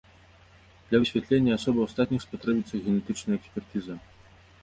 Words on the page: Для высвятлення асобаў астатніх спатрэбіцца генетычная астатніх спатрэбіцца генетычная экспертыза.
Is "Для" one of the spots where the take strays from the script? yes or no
no